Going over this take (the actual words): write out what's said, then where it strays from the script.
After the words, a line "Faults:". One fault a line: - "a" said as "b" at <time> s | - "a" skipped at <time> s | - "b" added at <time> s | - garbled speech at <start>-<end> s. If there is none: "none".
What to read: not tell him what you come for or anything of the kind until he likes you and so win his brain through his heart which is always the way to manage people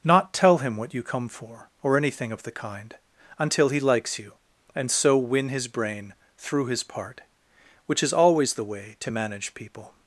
not tell him what you come for or anything of the kind until he likes you and so win his brain through his part which is always the way to manage people
Faults:
- "heart" said as "part" at 6.8 s